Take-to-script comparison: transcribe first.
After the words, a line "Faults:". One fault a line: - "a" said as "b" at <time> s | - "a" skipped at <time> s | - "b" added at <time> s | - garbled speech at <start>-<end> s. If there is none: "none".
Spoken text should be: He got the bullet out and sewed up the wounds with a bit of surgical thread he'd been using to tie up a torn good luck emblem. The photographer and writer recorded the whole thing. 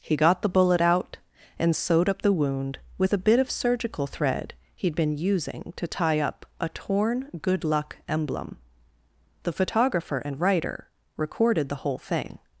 He got the bullet out and sewed up the wound with a bit of surgical thread he'd been using to tie up a torn good luck emblem. The photographer and writer recorded the whole thing.
Faults:
- "wounds" said as "wound" at 2.3 s